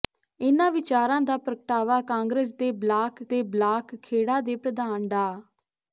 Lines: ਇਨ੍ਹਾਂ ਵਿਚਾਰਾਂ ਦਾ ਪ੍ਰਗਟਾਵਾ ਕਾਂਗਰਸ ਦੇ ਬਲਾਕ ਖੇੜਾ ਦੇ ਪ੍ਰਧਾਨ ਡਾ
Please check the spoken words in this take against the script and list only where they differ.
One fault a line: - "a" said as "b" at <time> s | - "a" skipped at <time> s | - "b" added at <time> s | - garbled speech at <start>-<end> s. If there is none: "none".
- "ਦੇ ਬਲਾਕ" added at 3.2 s